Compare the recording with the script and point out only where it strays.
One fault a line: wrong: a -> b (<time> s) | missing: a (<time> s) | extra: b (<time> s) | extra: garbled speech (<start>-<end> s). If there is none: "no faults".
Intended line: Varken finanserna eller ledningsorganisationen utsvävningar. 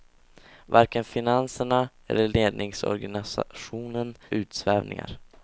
no faults